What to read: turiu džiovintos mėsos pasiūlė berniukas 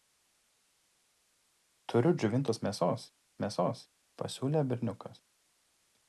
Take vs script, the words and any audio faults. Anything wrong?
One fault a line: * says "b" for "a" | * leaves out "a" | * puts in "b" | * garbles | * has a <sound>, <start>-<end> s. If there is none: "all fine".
* puts in "mėsos"